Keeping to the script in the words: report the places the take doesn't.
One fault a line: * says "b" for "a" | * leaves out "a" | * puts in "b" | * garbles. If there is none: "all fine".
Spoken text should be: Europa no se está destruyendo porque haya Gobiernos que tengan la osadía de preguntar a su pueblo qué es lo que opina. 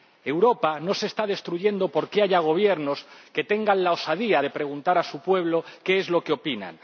all fine